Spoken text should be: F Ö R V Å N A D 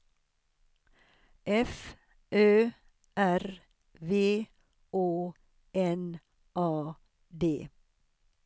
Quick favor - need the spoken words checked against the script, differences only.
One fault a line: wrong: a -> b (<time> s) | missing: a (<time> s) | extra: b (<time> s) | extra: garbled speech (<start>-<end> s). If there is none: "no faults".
no faults